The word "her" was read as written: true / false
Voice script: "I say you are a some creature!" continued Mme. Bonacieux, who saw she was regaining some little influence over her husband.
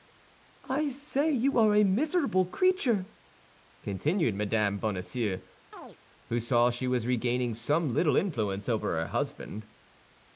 true